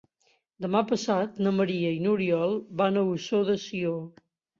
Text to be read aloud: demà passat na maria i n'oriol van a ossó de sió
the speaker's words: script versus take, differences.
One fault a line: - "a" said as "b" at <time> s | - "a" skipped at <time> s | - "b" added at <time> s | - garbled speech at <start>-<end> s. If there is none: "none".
none